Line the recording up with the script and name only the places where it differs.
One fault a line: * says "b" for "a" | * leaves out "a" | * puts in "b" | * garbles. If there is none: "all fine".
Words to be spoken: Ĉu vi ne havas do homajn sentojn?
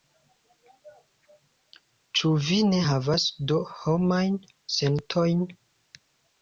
all fine